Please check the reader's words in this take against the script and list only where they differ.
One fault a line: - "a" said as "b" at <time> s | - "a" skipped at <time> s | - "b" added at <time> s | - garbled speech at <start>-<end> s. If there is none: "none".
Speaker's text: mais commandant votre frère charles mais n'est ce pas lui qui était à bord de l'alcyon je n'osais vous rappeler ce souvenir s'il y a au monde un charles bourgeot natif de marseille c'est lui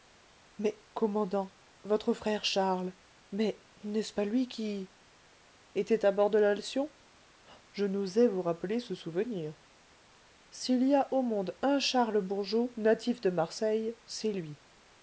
none